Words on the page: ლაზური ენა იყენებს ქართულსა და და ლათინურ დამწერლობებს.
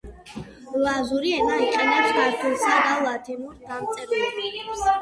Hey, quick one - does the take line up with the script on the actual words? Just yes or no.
no